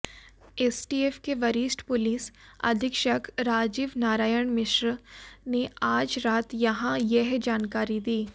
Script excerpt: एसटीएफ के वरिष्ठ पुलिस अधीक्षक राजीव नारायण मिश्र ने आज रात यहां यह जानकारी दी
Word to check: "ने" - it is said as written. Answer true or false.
true